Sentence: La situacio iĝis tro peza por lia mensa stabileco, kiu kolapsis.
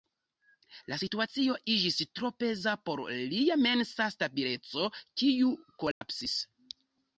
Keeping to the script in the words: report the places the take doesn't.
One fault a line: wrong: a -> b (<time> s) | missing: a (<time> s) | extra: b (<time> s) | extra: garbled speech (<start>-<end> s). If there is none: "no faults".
no faults